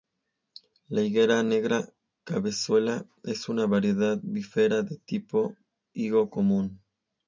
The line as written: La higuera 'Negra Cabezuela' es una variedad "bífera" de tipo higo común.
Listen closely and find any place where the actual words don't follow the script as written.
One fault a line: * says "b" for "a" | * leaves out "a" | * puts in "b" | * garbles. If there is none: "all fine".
all fine